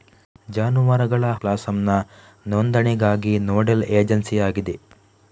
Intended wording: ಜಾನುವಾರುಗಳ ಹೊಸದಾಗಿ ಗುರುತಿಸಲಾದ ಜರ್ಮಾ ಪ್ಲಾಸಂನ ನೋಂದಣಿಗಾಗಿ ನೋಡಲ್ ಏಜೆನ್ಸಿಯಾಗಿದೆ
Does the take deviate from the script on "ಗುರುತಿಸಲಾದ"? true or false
true